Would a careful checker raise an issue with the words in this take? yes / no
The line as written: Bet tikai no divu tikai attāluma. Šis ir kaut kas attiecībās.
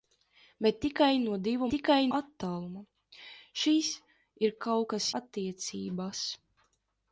no